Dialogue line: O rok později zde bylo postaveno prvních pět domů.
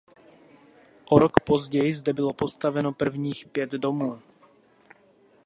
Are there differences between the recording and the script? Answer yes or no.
no